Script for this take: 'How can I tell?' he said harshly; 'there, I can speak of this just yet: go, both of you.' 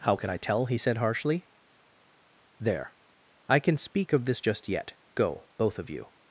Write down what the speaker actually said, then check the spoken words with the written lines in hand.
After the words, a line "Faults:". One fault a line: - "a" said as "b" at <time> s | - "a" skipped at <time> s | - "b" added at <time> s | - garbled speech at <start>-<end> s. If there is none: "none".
'How can I tell?' he said harshly; 'there, I can speak of this just yet: go, both of you.'
Faults:
none